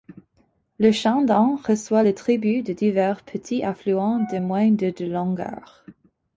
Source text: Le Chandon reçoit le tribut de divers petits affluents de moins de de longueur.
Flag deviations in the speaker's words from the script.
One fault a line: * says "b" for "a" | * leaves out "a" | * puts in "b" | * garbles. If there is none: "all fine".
all fine